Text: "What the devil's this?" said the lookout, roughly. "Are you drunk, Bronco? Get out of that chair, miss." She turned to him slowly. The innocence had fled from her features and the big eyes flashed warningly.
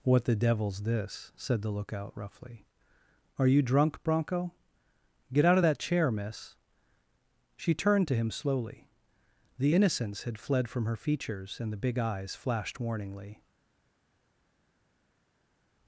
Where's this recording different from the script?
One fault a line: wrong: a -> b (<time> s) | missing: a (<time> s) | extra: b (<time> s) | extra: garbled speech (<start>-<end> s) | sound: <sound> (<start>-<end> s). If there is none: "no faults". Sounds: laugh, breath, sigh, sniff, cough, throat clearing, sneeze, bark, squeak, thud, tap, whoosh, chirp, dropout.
no faults